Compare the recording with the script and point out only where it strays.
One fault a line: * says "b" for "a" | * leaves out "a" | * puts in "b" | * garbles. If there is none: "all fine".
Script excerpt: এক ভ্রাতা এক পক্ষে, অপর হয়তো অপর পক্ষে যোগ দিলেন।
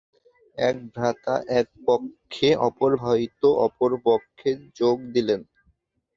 all fine